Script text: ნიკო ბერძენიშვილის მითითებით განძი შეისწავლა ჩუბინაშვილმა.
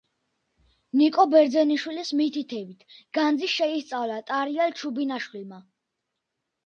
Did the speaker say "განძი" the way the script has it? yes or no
yes